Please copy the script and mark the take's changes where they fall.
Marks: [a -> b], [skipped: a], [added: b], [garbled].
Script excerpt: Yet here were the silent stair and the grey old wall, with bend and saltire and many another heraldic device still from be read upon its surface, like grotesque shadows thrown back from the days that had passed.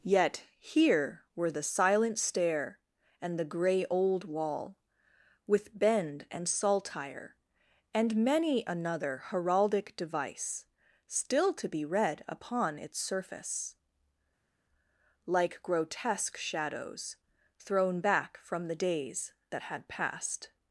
Yet here were the silent stair and the grey old wall, with bend and saltire and many another heraldic device still [from -> to] be read upon its surface, like grotesque shadows thrown back from the days that had passed.